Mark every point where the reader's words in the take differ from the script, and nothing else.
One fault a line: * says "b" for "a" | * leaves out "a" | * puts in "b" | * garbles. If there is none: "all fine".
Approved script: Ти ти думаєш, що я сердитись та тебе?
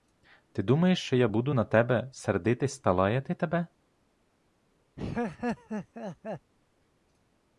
* leaves out "ти"
* puts in "буду на тебе"
* puts in "лаяти"